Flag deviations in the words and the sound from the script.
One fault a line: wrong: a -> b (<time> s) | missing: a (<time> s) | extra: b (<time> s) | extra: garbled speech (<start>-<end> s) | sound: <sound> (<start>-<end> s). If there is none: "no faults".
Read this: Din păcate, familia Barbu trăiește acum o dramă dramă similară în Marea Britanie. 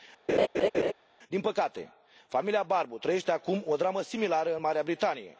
sound: laugh (0.3-0.9 s)
missing: dramă (4.0 s)